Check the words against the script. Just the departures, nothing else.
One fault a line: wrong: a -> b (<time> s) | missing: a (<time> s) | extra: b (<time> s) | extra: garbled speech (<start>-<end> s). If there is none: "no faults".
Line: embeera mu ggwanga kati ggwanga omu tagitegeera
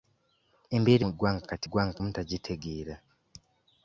no faults